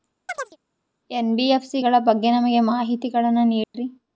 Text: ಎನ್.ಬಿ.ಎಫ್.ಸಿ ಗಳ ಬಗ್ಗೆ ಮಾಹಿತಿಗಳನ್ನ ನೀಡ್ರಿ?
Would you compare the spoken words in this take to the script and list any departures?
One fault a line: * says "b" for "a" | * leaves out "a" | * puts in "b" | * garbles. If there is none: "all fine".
* puts in "ನಮಗೆ"